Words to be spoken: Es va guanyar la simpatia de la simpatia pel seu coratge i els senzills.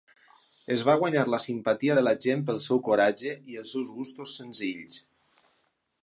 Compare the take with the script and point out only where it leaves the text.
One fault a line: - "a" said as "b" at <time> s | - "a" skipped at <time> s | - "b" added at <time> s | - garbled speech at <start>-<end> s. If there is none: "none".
- "simpatia" said as "gent" at 2.3 s
- "seus gustos" added at 3.8 s